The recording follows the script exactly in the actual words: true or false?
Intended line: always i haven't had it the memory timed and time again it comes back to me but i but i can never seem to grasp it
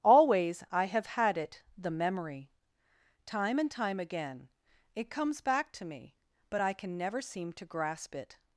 false